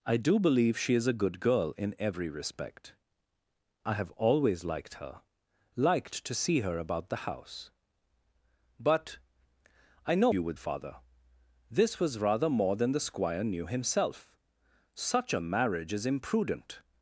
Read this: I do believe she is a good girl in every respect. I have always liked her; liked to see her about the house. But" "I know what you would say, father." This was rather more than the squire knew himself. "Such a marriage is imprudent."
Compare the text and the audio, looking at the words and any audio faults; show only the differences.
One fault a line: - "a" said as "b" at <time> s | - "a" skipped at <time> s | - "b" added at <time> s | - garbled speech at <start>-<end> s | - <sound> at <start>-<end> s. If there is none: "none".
- "what" skipped at 10.3 s
- "say" skipped at 10.6 s